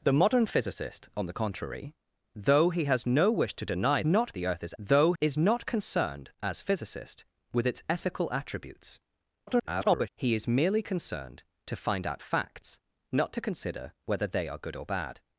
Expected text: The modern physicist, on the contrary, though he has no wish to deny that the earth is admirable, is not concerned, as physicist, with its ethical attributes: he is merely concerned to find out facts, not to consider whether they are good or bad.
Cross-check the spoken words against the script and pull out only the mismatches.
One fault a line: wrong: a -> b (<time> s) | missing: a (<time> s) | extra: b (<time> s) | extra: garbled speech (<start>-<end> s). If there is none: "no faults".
wrong: that -> not (4.1 s)
wrong: admirable -> though (4.8 s)
extra: garbled speech (9.5-10.1 s)